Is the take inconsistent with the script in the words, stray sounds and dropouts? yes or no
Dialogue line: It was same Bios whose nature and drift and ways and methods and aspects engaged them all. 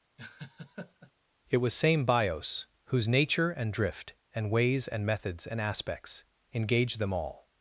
yes